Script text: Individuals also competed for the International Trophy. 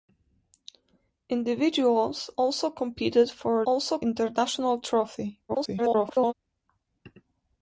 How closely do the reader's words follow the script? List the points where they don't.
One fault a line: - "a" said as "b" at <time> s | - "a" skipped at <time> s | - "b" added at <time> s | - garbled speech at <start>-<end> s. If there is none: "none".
- "the" said as "also" at 3.6 s
- garbled speech at 5.5-6.3 s